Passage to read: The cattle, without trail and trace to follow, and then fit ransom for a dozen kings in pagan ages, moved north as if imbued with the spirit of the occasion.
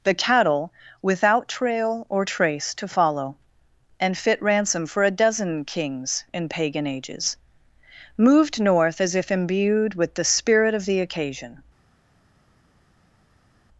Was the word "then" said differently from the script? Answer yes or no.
yes